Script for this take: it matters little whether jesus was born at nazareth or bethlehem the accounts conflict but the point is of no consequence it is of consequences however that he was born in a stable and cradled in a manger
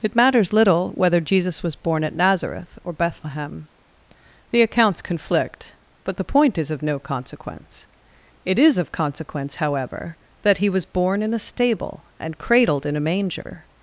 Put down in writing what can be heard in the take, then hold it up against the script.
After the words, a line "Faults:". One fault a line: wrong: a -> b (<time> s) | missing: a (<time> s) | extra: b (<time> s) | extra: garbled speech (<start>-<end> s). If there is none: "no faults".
it matters little whether jesus was born at nazareth or bethlehem the accounts conflict but the point is of no consequence it is of consequence however that he was born in a stable and cradled in a manger
Faults:
wrong: consequences -> consequence (8.9 s)